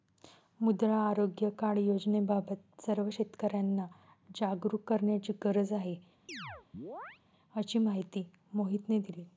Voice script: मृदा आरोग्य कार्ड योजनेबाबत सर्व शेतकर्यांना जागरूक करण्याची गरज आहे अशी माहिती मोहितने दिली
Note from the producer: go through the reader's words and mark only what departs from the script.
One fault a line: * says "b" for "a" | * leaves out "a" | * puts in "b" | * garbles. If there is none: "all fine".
all fine